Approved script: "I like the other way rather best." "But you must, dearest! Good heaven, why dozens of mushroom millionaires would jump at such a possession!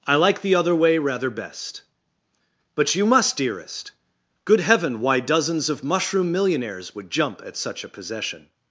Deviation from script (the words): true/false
false